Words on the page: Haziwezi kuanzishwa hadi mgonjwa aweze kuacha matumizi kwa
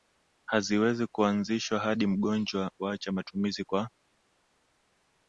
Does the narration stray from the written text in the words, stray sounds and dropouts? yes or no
yes